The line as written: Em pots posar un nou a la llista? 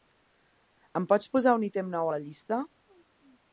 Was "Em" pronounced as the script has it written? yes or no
yes